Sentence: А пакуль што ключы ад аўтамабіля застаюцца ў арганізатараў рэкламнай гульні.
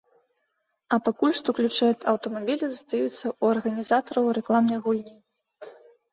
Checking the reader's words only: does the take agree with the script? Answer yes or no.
yes